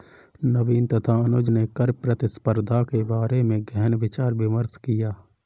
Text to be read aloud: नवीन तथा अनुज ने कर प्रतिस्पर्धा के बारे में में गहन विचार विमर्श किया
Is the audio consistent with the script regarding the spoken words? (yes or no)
no